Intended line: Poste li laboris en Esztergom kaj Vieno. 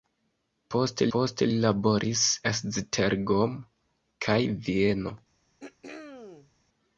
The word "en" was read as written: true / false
false